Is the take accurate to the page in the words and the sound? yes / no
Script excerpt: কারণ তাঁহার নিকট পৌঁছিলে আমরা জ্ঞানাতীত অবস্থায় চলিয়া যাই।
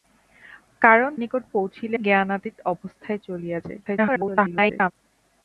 no